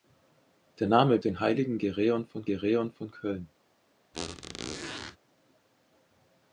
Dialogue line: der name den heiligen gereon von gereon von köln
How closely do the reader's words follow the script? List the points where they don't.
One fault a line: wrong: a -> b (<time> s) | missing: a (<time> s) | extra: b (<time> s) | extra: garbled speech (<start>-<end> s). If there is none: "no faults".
no faults